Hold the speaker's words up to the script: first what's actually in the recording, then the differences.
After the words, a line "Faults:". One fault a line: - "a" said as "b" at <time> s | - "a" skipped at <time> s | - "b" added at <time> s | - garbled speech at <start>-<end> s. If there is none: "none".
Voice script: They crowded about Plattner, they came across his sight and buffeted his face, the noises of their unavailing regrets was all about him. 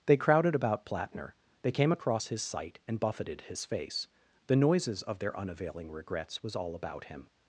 They crowded about Plattner, they came across his sight and buffeted his face, the noises of their unavailing regrets was all about him.
Faults:
none